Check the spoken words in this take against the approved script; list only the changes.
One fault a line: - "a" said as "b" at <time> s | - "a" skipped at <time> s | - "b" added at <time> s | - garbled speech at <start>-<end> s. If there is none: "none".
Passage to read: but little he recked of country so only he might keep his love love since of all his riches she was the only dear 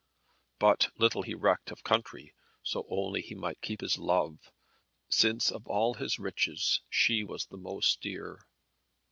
- "love" skipped at 4.5 s
- "only" said as "most" at 7.6 s